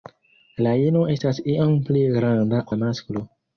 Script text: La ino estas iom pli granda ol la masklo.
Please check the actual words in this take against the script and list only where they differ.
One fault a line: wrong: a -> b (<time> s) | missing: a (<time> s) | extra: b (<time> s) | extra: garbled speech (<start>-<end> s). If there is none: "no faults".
missing: ol (2.6 s)